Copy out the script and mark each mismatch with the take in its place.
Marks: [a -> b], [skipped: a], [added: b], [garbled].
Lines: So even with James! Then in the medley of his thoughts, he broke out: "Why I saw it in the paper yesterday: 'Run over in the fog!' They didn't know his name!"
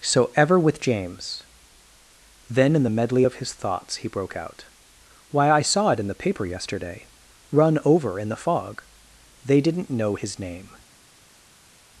So [even -> ever] with James! Then in the medley of his thoughts, he broke out: "Why I saw it in the paper yesterday: 'Run over in the fog!' They didn't know his name!"